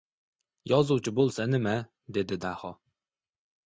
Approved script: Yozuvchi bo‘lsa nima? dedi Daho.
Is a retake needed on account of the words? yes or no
no